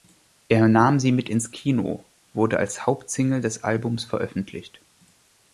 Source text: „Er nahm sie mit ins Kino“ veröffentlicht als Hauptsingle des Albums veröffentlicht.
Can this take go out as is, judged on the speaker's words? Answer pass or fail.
fail